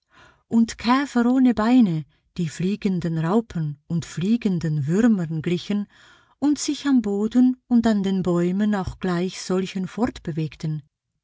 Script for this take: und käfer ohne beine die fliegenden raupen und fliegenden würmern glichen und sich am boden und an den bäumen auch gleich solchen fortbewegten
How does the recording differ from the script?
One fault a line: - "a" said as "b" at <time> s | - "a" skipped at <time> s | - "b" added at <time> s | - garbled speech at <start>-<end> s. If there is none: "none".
none